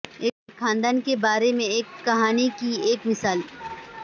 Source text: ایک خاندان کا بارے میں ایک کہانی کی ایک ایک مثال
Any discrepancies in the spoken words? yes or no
yes